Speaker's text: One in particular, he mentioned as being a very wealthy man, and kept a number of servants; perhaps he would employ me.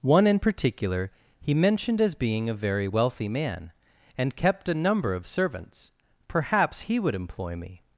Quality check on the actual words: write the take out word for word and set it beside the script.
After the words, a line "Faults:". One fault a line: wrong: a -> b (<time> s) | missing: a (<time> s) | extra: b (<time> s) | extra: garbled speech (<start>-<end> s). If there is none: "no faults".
One in particular, he mentioned as being a very wealthy man, and kept a number of servants; perhaps he would employ me.
Faults:
no faults